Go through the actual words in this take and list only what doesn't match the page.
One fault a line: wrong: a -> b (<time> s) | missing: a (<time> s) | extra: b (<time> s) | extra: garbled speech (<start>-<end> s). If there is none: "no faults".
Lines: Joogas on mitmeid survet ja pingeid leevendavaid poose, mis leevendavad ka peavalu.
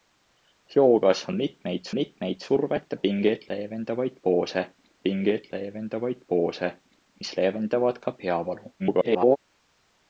extra: mitmeid (2.0 s)
extra: pingeid leevendavaid poose (5.0 s)
extra: garbled speech (8.8-9.4 s)